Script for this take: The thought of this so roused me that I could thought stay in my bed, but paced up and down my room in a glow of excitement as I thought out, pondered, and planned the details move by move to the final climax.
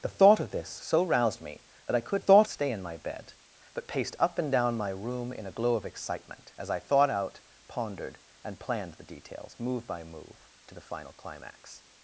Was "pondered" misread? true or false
false